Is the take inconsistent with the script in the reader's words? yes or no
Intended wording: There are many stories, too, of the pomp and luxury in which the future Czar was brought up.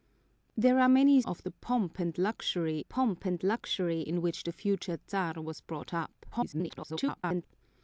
yes